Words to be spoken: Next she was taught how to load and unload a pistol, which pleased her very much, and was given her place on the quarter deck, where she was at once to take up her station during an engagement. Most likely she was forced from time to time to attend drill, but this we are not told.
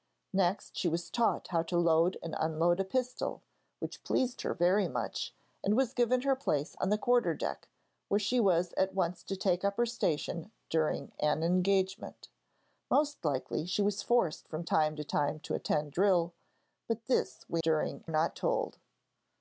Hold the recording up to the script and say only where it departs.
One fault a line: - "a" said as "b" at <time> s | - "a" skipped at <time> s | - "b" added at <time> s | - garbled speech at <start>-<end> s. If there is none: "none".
- "are" said as "during" at 17.6 s